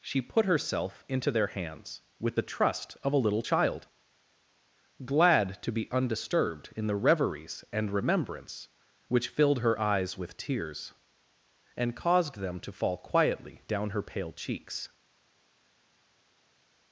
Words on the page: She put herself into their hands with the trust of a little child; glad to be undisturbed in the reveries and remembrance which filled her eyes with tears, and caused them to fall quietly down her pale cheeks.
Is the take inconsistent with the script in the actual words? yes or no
no